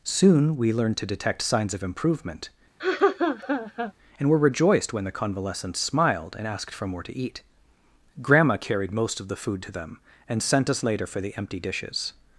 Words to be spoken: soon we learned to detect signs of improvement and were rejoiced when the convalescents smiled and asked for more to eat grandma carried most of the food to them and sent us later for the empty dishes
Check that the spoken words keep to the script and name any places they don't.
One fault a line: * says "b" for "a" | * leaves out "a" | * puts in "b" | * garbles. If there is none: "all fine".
all fine